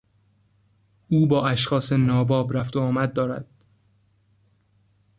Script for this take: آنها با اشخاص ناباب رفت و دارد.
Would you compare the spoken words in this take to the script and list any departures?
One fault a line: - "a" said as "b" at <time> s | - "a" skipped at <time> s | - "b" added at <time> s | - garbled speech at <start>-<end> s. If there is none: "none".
- "آنها" said as "او" at 1.1 s
- "آمد" added at 2.8 s